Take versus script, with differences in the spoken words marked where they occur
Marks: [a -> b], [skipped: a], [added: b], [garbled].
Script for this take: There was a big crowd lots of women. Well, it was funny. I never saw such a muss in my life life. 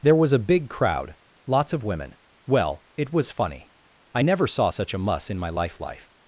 There was a big crowd lots of women. Well, it was funny. I never saw such a muss in my life life.